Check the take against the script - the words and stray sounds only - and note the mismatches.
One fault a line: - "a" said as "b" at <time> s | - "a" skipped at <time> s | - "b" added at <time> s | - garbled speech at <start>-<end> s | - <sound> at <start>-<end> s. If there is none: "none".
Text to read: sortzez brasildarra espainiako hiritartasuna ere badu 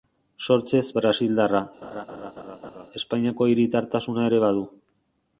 - laugh at 1.8-2.9 s